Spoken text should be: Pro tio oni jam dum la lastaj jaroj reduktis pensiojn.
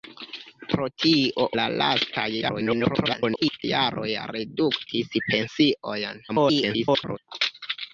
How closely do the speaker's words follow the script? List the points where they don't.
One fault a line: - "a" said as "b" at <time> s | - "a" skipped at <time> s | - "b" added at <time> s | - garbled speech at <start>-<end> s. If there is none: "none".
- "oni jam dum" skipped at 1.4 s
- garbled speech at 2.4-3.6 s
- garbled speech at 6.3-7.2 s